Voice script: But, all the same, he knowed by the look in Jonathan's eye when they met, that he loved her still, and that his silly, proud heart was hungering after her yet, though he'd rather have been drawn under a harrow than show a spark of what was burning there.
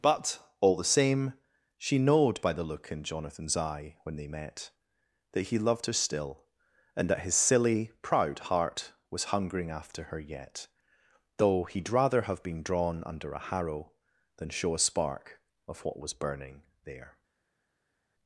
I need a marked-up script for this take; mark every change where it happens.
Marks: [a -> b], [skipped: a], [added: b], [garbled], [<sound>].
But, all the same, [he -> she] knowed by the look in Jonathan's eye when they met, that he loved her still, and that his silly, proud heart was hungering after her yet, though he'd rather have been drawn under a harrow than show a spark of what was burning there.